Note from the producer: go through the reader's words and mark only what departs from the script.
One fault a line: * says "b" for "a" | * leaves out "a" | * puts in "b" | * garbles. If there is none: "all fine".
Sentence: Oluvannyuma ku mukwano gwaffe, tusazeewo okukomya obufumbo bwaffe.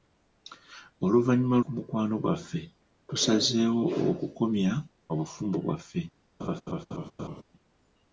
all fine